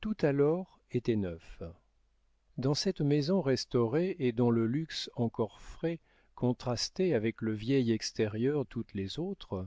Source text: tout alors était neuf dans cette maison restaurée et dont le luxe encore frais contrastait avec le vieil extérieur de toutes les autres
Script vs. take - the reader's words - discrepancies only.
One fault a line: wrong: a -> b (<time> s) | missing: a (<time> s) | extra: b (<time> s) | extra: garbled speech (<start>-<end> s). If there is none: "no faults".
missing: de (8.6 s)